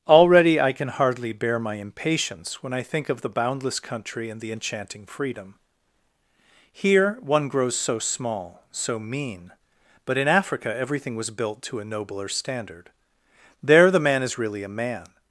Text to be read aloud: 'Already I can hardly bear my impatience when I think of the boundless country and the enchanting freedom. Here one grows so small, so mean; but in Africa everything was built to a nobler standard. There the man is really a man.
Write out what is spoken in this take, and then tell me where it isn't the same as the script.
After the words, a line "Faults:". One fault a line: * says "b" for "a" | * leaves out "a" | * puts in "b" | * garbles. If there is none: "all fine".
'Already I can hardly bear my impatience when I think of the boundless country and the enchanting freedom. Here one grows so small, so mean; but in Africa everything was built to a nobler standard. There the man is really a man.
Faults:
all fine